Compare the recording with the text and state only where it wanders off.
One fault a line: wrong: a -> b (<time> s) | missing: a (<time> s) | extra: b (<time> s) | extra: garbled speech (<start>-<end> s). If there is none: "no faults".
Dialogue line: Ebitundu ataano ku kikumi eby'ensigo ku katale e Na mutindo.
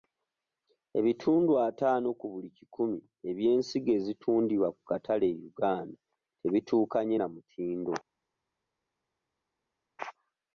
extra: buli (2.3 s)
extra: ezitundibwa (4.0 s)
extra: Uganda tebituukanye (5.5 s)